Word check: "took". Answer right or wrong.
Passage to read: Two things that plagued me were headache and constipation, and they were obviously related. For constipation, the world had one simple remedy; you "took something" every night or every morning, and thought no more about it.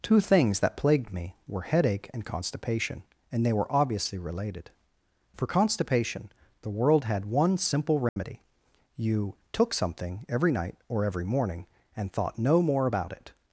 right